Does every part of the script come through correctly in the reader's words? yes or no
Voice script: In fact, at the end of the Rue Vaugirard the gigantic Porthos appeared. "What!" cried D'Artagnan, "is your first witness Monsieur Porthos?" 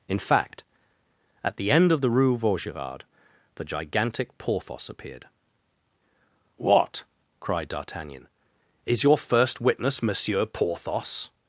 yes